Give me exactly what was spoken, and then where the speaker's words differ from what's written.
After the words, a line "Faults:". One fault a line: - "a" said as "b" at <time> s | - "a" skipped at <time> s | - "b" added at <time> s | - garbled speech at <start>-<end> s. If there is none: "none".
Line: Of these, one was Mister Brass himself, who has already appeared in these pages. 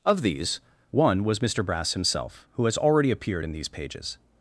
Of these, one was Mister Brass himself, who has already appeared in these pages.
Faults:
none